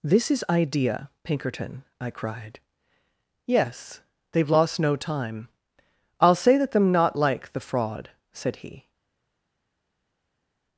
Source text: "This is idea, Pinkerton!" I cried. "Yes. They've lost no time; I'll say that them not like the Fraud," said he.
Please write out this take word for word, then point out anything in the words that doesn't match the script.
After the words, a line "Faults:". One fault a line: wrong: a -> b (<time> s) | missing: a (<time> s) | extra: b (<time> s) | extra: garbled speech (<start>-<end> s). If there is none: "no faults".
"This is idea, Pinkerton!" I cried. "Yes. They've lost no time; I'll say that them not like the Fraud," said he.
Faults:
no faults